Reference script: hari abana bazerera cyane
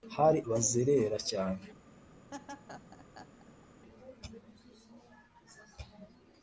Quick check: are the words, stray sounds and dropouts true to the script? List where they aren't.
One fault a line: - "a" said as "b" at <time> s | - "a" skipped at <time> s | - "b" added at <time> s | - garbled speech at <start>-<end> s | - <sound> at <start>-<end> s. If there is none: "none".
- "abana" skipped at 0.4 s
- laugh at 2.3-3.7 s